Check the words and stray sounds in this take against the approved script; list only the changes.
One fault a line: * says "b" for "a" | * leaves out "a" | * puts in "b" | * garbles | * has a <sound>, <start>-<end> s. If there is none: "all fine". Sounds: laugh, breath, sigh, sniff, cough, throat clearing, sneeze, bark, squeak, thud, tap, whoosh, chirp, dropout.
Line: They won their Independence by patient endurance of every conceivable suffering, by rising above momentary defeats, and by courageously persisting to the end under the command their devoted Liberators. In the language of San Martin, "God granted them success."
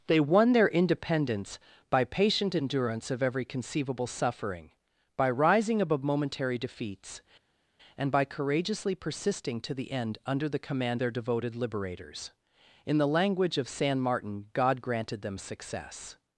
all fine